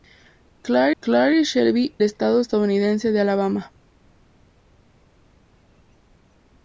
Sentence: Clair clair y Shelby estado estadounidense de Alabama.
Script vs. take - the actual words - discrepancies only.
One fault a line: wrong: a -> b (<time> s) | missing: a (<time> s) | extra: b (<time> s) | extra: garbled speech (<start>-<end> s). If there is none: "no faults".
no faults